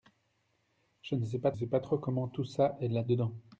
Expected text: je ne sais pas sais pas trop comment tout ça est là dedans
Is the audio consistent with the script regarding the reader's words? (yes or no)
yes